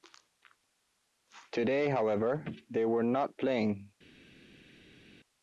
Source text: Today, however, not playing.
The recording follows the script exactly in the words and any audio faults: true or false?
false